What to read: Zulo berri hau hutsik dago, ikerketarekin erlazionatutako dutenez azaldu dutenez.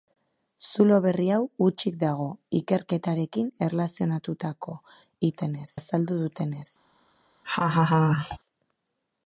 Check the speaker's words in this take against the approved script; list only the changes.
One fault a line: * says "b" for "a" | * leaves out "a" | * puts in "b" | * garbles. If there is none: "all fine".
all fine